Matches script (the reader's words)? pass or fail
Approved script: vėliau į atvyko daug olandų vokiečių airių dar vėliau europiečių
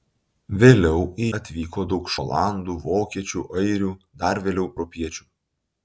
pass